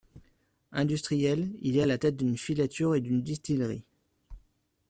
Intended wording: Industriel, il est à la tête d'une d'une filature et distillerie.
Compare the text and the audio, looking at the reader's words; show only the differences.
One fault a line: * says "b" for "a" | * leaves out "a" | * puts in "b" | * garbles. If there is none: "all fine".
* leaves out "d'une"
* puts in "d'une"